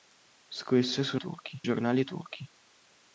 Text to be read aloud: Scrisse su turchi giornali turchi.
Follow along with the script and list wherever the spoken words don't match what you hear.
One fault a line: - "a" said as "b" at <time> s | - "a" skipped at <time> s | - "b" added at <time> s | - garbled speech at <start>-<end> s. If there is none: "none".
none